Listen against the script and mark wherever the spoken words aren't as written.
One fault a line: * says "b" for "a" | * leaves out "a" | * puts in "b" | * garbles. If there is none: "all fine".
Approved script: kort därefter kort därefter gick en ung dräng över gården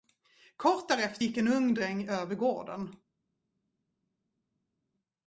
* leaves out "kort därefter"